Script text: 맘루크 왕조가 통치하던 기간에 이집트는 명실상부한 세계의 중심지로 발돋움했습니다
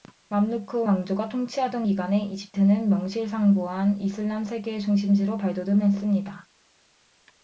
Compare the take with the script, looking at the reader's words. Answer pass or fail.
fail